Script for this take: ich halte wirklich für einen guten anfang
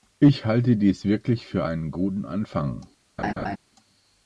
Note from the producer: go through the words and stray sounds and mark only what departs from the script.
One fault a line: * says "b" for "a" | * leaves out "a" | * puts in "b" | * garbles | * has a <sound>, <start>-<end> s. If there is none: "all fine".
* puts in "dies"
* has a laugh, 3.2-3.6 s